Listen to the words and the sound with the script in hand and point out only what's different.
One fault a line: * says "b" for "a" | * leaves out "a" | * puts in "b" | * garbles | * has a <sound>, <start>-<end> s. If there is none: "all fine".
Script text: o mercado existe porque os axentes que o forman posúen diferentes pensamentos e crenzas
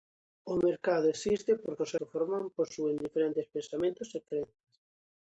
* leaves out "axentes"